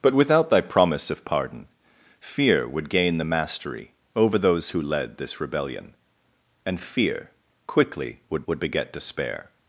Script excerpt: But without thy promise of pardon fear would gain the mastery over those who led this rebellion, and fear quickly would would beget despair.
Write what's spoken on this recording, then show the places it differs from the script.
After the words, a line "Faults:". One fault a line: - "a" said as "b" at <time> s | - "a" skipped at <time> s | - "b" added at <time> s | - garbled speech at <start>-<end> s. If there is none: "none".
But without thy promise of pardon fear would gain the mastery over those who led this rebellion, and fear quickly would would beget despair.
Faults:
none